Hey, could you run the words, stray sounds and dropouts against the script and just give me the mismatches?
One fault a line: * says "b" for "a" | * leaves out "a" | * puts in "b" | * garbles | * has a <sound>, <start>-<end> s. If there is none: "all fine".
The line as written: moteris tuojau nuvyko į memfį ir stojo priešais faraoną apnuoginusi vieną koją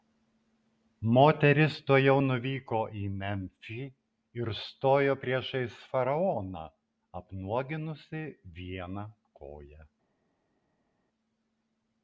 all fine